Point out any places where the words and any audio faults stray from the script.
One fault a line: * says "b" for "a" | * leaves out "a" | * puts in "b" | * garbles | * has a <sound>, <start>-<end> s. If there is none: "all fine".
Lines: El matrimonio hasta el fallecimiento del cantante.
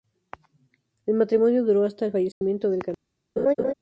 * puts in "duró"
* has a dropout, 2.3-2.4 s
* has a laugh, 3.4-3.7 s